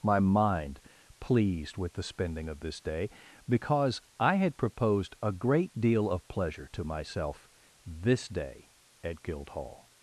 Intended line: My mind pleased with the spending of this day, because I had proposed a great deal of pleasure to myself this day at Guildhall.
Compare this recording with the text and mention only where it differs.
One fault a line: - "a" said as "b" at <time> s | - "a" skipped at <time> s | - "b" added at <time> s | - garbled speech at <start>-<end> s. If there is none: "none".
none